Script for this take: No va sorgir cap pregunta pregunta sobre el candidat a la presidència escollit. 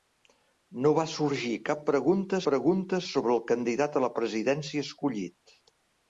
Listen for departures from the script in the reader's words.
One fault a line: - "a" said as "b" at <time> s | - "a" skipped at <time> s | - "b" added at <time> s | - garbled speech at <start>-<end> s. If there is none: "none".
none